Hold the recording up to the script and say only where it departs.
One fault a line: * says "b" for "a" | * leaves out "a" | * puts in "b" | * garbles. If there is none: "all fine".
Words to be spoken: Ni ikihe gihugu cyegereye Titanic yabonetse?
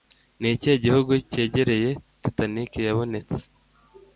all fine